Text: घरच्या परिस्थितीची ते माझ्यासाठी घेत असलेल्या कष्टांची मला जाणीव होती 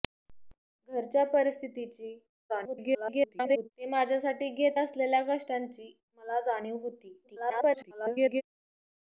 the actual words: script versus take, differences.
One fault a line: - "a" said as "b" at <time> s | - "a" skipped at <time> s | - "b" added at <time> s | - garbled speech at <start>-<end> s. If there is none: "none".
- garbled speech at 2.5-3.7 s
- garbled speech at 7.2-8.4 s